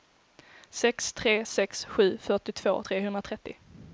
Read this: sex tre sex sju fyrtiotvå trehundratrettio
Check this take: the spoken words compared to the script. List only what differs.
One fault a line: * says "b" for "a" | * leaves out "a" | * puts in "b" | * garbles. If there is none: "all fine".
all fine